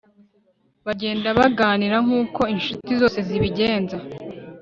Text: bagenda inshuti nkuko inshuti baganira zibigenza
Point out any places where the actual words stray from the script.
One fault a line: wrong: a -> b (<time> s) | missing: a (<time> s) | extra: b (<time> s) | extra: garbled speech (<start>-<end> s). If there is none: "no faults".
wrong: inshuti -> baganira (1.4 s)
wrong: baganira -> zose (3.0 s)